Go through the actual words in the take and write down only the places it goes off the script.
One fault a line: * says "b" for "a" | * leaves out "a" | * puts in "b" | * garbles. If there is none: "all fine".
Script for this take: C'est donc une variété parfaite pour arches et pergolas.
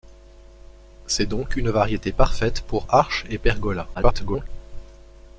* garbles